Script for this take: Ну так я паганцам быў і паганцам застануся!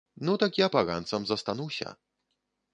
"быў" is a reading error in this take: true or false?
true